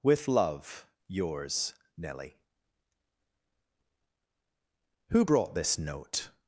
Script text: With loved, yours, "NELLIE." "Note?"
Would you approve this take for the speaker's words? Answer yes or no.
no